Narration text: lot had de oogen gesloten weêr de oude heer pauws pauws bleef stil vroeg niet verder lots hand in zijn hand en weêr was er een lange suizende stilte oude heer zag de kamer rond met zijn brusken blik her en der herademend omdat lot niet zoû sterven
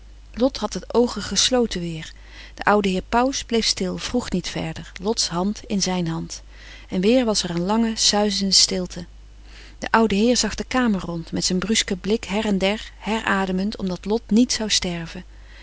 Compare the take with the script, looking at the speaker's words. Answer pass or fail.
fail